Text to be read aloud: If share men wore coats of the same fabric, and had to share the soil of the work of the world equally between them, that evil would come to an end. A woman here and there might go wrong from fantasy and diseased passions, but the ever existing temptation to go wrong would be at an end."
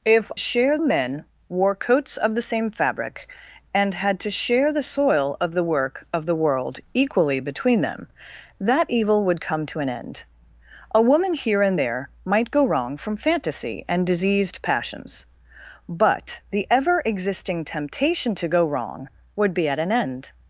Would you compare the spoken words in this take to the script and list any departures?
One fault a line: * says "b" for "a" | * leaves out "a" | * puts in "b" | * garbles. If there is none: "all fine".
all fine